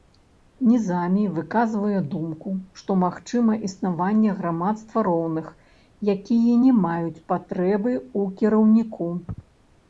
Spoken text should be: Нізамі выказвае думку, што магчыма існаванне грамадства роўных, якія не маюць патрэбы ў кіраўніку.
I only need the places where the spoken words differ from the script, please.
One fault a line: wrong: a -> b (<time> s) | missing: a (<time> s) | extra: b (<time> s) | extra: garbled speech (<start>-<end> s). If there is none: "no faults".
no faults